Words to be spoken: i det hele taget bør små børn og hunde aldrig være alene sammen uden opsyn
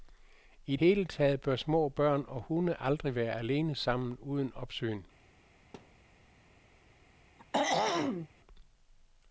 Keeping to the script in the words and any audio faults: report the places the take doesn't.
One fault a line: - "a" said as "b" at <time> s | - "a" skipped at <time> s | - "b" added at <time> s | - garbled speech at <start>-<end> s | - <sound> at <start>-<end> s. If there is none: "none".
- "det" skipped at 0.8 s
- thud at 5.7-6.1 s
- throat clearing at 7.4-8.3 s